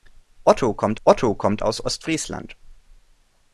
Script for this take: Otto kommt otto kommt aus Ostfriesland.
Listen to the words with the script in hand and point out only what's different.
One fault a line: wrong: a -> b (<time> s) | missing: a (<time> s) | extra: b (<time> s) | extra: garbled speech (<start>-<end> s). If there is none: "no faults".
no faults